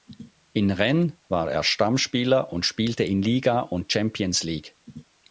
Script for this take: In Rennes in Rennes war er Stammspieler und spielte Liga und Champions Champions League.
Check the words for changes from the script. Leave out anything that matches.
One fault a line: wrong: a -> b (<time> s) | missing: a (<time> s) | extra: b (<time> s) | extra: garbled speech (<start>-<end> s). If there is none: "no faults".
missing: in Rennes (1.1 s)
extra: in (3.0 s)
missing: Champions (4.4 s)